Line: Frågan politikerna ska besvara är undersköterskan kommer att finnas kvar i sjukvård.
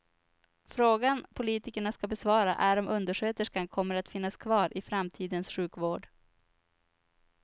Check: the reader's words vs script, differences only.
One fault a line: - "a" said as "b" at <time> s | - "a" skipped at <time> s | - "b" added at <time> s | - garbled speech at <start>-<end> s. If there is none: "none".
- "om" added at 2.8 s
- "framtidens" added at 4.8 s